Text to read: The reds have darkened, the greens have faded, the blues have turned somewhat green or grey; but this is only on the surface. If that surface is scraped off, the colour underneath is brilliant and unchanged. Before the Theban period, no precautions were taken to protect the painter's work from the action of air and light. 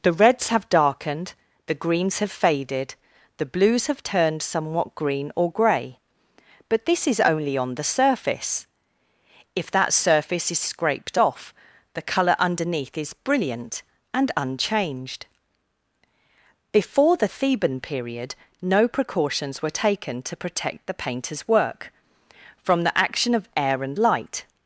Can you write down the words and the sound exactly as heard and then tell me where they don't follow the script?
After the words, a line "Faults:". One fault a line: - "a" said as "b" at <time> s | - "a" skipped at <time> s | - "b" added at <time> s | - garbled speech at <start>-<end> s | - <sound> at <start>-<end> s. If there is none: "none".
The reds have darkened, the greens have faded, the blues have turned somewhat green or grey; but this is only on the surface. If that surface is scraped off, the colour underneath is brilliant and unchanged. Before the Theban period, no precautions were taken to protect the painter's work from the action of air and light.
Faults:
none